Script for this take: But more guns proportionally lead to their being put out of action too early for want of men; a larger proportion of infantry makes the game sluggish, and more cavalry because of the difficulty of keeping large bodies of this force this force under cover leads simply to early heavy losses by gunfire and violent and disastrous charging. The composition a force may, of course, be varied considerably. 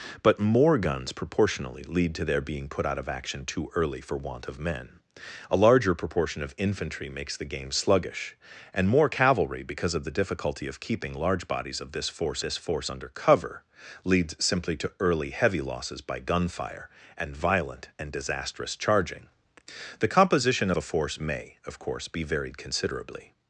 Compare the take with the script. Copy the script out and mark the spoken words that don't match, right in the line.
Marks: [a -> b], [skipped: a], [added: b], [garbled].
But more guns proportionally lead to their being put out of action too early for want of men; a larger proportion of infantry makes the game sluggish, and more cavalry because of the difficulty of keeping large bodies of this force this force under cover leads simply to early heavy losses by gunfire and violent and disastrous charging. The composition a force may, of course, be varied considerably.